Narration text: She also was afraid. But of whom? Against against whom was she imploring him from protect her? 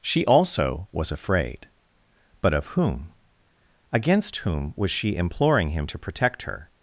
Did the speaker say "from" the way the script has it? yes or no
no